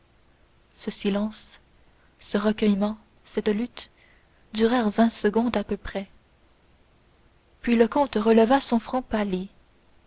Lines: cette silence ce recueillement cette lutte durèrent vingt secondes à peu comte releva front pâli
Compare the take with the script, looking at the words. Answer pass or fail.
fail